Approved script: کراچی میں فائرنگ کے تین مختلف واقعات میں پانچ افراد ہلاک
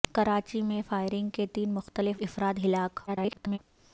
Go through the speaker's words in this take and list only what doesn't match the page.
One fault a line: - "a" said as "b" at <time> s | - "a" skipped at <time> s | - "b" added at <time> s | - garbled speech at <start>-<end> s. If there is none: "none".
- "واقعات میں پانچ" skipped at 2.2 s
- garbled speech at 3.1-3.6 s